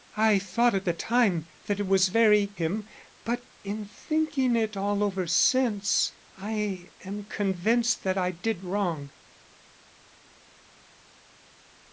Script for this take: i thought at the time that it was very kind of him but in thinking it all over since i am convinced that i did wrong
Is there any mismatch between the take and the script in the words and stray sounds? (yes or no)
yes